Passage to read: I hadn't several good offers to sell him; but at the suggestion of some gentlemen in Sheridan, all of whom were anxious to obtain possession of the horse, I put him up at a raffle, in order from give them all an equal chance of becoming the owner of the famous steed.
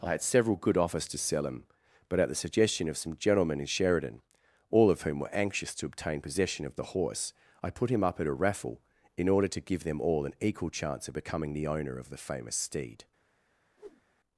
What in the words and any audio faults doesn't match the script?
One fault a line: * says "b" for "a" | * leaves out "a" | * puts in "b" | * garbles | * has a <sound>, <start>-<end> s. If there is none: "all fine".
* says "had" for "hadn't"
* says "to" for "from"
* has a whoosh, 13.8-14.0 s